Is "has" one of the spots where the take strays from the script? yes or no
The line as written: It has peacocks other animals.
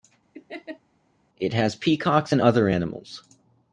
no